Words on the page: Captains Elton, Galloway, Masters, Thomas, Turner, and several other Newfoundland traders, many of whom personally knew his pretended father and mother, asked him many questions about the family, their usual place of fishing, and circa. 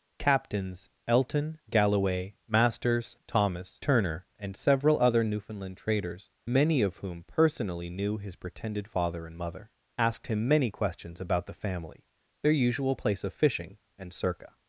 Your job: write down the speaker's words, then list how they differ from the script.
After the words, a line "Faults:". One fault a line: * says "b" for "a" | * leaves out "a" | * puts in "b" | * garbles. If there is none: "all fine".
Captains Elton, Galloway, Masters, Thomas, Turner, and several other Newfoundland traders, many of whom personally knew his pretended father and mother, asked him many questions about the family, their usual place of fishing, and circa.
Faults:
all fine